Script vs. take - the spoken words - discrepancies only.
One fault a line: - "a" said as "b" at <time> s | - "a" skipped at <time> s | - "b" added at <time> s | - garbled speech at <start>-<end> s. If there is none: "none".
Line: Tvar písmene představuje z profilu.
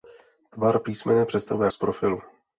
none